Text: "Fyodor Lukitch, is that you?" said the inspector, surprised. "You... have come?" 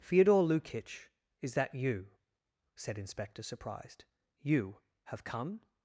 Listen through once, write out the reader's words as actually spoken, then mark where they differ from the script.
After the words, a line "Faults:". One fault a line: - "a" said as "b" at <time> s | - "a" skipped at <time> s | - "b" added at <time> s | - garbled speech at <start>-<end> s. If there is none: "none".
"Fyodor Lukitch, is that you?" said inspector, surprised. "You... have come?"
Faults:
- "the" skipped at 3.0 s